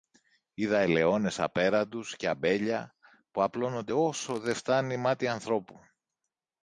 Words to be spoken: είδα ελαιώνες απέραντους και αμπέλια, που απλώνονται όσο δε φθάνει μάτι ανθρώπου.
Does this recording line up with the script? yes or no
yes